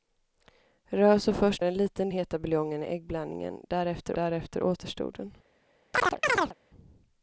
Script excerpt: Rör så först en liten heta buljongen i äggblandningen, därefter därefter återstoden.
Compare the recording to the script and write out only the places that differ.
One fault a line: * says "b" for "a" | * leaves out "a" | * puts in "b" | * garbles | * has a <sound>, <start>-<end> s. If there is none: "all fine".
* has a chirp, 5.9-6.5 s